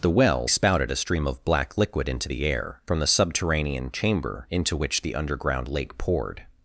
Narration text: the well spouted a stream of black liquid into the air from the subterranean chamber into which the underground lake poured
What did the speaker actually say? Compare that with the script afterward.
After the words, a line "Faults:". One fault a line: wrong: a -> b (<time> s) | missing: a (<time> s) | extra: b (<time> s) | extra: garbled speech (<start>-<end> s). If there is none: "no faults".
the well spouted a stream of black liquid into the air from the subterranean chamber into which the underground lake poured
Faults:
no faults